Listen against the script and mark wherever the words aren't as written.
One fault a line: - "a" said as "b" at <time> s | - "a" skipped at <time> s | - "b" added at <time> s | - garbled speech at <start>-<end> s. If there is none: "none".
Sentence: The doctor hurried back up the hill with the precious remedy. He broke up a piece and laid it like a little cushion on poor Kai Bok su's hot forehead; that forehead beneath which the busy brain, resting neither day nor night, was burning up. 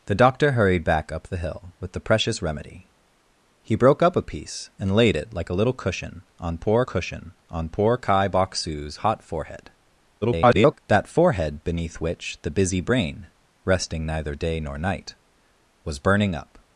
- "cushion on poor" added at 6.8 s
- garbled speech at 10.2-10.8 s